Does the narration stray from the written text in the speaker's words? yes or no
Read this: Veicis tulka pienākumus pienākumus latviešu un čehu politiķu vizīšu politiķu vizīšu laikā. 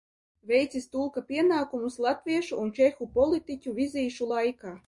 yes